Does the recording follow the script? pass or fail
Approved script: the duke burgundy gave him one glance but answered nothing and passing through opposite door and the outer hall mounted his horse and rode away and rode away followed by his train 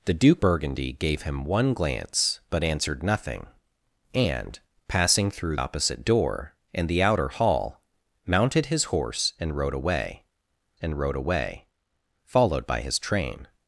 pass